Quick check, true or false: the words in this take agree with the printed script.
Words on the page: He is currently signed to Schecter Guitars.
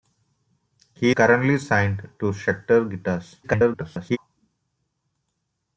false